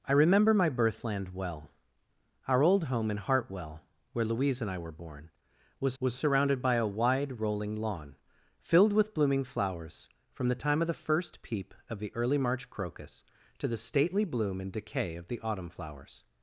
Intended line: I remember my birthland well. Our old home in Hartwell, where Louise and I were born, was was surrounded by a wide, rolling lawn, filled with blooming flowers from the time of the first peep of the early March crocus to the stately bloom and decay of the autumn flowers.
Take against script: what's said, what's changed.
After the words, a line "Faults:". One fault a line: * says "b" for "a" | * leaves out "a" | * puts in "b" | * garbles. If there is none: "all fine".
I remember my birthland well. Our old home in Hartwell, where Louise and I were born, was was surrounded by a wide, rolling lawn, filled with blooming flowers from the time of the first peep of the early March crocus to the stately bloom and decay of the autumn flowers.
Faults:
all fine